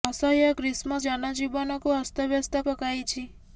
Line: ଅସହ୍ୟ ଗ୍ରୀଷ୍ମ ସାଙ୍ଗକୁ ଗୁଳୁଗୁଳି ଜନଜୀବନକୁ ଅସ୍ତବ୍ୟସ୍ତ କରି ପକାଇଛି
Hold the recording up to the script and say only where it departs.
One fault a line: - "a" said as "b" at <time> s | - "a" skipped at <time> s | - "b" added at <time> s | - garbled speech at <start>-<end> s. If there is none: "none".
- "ସାଙ୍ଗକୁ ଗୁଳୁଗୁଳି" skipped at 1.0 s
- "କରି" skipped at 2.7 s